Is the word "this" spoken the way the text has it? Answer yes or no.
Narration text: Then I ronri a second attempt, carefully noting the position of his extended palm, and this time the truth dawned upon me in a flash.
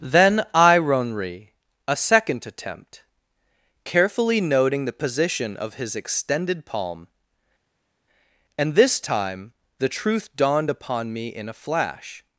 yes